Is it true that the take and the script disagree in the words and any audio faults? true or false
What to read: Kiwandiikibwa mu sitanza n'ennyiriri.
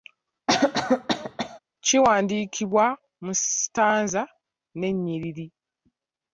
true